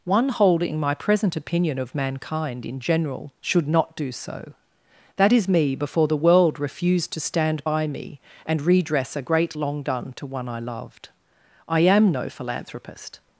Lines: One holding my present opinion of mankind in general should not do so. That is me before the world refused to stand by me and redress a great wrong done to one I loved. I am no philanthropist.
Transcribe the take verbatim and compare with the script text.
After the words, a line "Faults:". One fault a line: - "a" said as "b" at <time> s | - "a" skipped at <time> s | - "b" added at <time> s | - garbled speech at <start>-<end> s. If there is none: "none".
One holding my present opinion of mankind in general should not do so. That is me before the world refused to stand by me and redress a great long done to one I loved. I am no philanthropist.
Faults:
- "wrong" said as "long" at 9.5 s